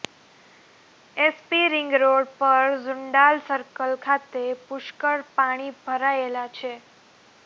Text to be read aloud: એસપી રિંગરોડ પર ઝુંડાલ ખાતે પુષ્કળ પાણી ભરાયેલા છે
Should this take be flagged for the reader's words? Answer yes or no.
yes